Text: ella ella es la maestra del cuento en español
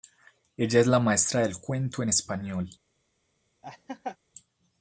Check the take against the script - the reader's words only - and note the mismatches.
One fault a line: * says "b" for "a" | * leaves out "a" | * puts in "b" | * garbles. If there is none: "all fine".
* leaves out "ella"